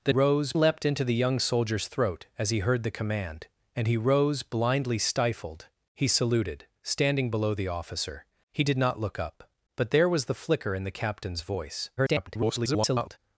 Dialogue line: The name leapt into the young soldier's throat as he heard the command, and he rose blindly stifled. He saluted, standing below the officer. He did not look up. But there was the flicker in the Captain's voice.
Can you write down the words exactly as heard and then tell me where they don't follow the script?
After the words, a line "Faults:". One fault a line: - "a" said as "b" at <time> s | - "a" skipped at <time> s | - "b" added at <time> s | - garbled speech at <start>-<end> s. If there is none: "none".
The rose leapt into the young soldier's throat as he heard the command, and he rose blindly stifled. He saluted, standing below the officer. He did not look up. But there was the flicker in the Captain's voice. [garbled]
Faults:
- "name" said as "rose" at 0.1 s
- garbled speech at 12.0-13.2 s